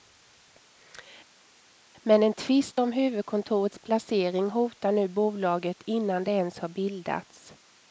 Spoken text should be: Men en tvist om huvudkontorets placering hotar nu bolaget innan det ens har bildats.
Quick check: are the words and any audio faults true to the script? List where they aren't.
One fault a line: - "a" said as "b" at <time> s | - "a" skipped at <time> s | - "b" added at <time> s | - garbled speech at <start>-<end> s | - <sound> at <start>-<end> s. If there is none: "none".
none